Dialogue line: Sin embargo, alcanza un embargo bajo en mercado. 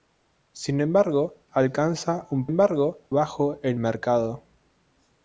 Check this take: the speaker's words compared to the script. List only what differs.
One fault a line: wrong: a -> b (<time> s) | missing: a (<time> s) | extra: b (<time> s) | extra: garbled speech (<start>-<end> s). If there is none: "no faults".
no faults